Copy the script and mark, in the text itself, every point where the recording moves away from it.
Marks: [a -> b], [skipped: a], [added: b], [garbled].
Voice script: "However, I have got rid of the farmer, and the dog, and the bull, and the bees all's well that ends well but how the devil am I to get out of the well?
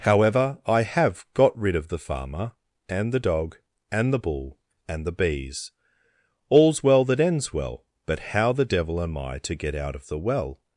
"However, I have got rid of the farmer, and the dog, and the bull, and the bees all's well that ends well but how the devil am I to get out of the well?